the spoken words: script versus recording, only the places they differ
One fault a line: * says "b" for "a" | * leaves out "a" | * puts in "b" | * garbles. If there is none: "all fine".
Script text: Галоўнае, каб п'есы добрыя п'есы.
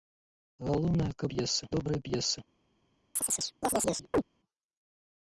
all fine